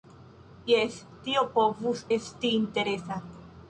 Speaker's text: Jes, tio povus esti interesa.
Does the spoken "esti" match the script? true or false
true